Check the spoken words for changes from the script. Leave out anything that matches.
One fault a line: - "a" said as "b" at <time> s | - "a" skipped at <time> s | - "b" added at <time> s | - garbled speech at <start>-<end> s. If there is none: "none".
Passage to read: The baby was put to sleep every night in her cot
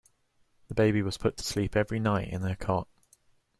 none